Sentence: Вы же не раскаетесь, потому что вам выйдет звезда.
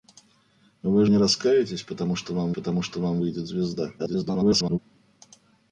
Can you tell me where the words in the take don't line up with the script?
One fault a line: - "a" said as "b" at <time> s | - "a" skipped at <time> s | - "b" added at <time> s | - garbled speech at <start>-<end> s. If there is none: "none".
- "же" skipped at 1.1 s
- "потому что вам" added at 2.5 s
- garbled speech at 4.0-4.8 s